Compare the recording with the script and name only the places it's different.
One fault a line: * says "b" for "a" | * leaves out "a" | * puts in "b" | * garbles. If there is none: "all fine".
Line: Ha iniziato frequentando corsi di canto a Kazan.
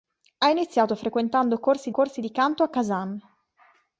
* puts in "corsi"